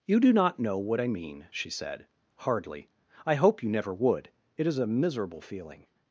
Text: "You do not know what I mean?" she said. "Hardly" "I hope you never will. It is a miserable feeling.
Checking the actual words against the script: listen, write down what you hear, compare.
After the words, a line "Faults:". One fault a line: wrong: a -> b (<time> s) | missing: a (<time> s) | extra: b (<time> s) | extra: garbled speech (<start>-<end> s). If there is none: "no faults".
"You do not know what I mean?" she said. "Hardly" "I hope you never would. It is a miserable feeling.
Faults:
wrong: will -> would (3.9 s)